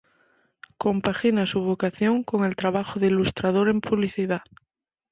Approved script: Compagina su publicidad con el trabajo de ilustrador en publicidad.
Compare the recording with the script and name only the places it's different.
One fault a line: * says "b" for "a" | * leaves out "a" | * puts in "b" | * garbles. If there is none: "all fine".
* says "vocación" for "publicidad"